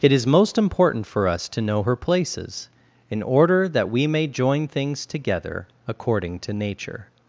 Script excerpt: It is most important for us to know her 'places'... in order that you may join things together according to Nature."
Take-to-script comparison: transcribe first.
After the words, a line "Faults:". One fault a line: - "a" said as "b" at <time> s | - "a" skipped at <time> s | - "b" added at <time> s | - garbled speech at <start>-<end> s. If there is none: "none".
It is most important for us to know her 'places'... in order that we may join things together according to Nature."
Faults:
- "you" said as "we" at 3.9 s